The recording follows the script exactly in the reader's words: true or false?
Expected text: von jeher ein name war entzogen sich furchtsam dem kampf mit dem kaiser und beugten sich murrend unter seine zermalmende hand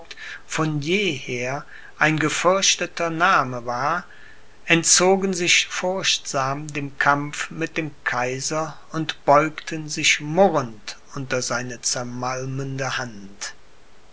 false